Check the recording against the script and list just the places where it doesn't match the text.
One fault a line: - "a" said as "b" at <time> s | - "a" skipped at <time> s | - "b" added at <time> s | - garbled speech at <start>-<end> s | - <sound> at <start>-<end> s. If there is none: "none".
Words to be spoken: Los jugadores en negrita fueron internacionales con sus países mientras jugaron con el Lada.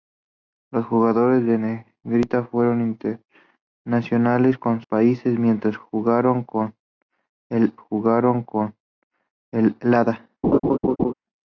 - "sus" skipped at 4.8 s
- "jugaron con el" added at 7.7 s
- laugh at 10.4-11.1 s